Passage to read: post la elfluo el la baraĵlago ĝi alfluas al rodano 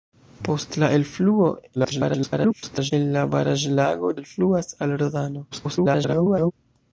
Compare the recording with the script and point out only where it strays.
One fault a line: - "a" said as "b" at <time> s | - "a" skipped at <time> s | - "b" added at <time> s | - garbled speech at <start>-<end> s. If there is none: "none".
- garbled speech at 1.7-2.9 s
- "ĝi" skipped at 4.1 s
- garbled speech at 5.5-6.5 s